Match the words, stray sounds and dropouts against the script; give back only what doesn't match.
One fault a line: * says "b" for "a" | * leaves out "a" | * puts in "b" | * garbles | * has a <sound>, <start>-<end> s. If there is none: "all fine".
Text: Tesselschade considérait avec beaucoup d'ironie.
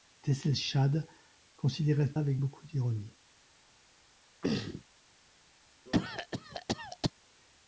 * has a throat clearing, 4.4-4.8 s
* has a cough, 5.9-7.1 s